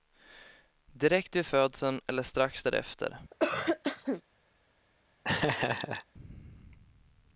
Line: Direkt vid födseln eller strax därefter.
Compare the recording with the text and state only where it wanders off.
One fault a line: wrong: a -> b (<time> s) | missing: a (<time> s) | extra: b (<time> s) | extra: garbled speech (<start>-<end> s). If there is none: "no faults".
no faults